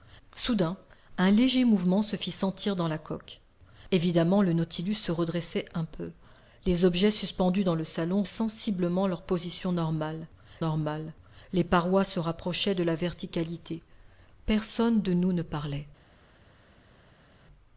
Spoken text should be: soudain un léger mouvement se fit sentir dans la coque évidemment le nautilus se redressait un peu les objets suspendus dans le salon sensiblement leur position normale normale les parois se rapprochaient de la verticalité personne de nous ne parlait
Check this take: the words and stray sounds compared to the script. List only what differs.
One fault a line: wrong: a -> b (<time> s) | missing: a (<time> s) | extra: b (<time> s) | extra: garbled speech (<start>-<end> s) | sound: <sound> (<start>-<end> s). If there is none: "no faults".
no faults